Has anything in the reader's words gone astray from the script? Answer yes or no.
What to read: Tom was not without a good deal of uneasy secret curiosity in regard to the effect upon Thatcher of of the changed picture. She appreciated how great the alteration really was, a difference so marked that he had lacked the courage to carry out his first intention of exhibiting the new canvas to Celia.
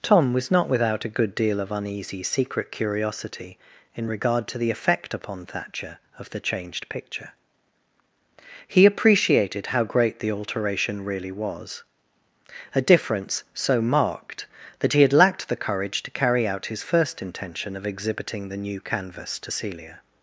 yes